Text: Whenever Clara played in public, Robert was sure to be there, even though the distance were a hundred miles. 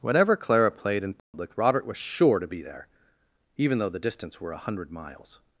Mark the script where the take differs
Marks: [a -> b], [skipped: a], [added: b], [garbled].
Whenever Clara played in public, Robert was sure to be there, even though the distance were a hundred miles.